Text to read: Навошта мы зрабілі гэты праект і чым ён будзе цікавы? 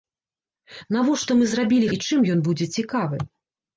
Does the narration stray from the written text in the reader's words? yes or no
yes